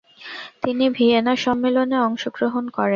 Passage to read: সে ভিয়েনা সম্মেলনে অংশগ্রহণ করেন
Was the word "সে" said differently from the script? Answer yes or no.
yes